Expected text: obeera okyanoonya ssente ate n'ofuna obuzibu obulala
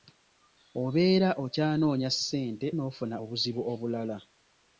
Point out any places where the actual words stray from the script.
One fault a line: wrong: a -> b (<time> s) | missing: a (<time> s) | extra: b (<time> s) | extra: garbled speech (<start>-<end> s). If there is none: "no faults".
missing: ate (2.7 s)